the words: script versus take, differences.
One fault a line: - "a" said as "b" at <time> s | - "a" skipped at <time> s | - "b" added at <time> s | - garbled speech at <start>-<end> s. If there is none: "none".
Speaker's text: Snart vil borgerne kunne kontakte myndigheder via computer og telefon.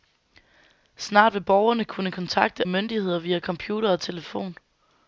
none